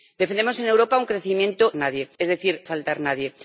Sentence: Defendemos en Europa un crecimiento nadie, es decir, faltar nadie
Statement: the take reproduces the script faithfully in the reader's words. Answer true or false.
true